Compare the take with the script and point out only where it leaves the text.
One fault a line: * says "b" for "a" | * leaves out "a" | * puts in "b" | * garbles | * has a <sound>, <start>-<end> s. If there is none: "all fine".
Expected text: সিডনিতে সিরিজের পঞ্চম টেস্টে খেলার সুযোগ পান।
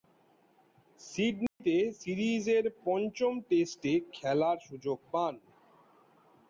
* has a dropout, 1.5-1.6 s